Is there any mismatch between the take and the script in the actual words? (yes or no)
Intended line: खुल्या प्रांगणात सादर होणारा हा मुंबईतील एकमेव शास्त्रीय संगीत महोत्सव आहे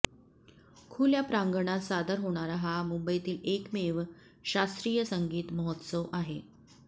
no